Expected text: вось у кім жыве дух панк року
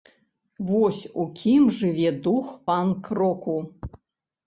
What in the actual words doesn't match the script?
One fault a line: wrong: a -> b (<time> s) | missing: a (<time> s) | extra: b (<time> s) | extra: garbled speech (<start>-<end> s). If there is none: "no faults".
no faults